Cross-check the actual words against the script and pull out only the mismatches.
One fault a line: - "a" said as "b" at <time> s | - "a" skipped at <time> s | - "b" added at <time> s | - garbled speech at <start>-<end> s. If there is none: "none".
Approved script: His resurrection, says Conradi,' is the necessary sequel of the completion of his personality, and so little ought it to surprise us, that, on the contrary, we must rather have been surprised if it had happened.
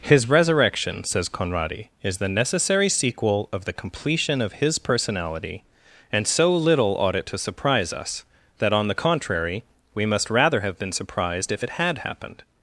none